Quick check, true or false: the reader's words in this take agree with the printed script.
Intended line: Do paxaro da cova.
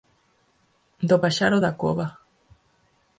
true